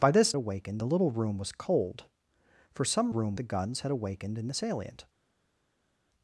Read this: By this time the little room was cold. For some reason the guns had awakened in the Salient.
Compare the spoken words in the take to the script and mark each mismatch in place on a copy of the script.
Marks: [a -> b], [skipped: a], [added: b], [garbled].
By this [time -> awakened] the little room was cold. For some [reason -> room] the guns had awakened in the Salient.